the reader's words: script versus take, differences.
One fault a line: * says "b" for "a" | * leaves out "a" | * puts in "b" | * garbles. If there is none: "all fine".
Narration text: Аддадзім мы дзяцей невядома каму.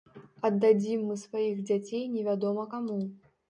* puts in "сваіх"